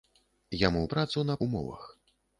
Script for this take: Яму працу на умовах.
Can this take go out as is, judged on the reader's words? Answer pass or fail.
pass